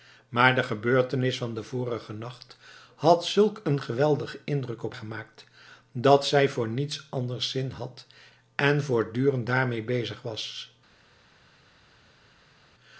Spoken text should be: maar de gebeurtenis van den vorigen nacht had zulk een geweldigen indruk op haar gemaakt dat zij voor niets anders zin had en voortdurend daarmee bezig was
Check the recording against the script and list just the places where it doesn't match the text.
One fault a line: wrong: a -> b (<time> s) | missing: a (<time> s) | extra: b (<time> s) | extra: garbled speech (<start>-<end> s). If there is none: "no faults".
missing: haar (5.0 s)